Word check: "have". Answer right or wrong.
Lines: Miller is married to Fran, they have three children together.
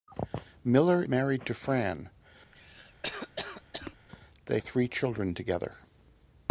wrong